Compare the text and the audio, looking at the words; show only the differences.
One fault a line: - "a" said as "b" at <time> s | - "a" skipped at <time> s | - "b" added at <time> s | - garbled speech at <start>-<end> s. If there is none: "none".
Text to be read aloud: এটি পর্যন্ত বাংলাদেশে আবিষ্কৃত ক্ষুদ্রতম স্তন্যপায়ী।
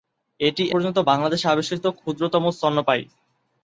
none